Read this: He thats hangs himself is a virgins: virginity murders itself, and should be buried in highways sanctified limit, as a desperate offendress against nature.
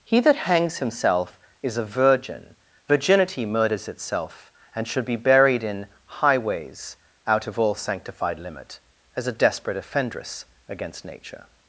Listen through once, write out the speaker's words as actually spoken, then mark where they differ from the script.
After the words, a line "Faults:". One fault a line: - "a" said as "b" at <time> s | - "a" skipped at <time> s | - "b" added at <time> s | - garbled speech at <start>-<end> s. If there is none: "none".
He that hangs himself is a virgin: virginity murders itself, and should be buried in highways out of all sanctified limit, as a desperate offendress against nature.
Faults:
- "thats" said as "that" at 0.2 s
- "virgins" said as "virgin" at 1.9 s
- "out of all" added at 7.3 s